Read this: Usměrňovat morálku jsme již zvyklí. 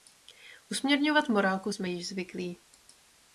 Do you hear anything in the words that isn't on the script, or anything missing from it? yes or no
no